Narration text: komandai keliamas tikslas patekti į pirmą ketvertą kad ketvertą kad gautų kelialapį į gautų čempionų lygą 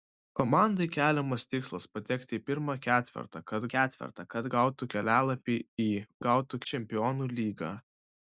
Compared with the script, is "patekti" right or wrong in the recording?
right